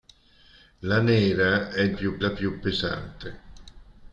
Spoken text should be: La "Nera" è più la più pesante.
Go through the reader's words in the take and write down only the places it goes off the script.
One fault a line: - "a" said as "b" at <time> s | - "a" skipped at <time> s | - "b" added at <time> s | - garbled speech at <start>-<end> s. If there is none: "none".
none